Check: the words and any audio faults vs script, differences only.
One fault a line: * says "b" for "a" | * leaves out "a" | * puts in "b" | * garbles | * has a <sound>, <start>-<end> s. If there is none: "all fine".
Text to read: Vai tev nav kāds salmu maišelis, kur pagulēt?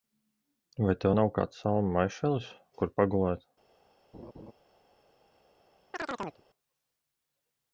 * has a laugh, 4.1-4.5 s
* has a chirp, 5.9-6.4 s